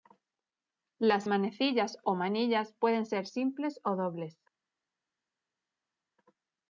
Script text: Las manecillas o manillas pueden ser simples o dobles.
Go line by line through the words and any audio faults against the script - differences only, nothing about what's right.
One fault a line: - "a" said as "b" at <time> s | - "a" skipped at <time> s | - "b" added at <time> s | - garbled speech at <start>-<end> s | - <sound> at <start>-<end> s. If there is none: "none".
none